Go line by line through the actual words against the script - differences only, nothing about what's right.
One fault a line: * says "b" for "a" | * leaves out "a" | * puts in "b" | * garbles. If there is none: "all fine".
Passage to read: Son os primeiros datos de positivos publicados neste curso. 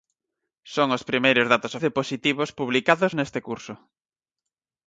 all fine